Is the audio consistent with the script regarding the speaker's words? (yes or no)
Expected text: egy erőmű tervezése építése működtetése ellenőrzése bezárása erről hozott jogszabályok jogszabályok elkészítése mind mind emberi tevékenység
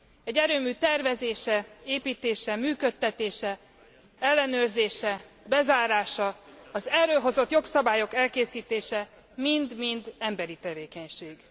no